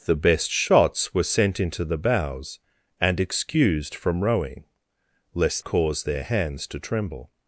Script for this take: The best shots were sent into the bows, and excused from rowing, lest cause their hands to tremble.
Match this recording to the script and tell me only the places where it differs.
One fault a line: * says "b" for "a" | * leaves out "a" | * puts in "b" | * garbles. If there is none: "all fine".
all fine